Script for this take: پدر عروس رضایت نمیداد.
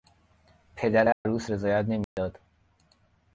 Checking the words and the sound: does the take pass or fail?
fail